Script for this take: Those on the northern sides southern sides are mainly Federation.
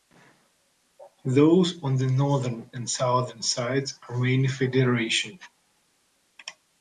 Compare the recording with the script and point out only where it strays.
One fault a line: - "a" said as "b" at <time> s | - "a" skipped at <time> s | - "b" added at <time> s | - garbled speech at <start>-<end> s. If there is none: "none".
- "sides" said as "and" at 2.7 s